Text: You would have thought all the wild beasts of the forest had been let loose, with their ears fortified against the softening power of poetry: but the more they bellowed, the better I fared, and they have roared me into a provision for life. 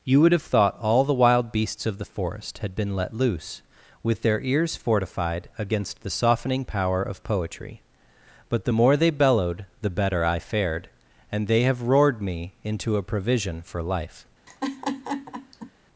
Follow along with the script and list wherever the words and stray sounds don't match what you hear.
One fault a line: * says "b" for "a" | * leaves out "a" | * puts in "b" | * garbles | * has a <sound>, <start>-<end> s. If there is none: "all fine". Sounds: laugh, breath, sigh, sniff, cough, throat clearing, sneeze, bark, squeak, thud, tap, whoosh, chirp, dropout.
* has a laugh, 14.5-15.7 s